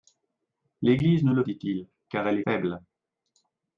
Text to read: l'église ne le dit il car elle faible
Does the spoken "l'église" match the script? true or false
true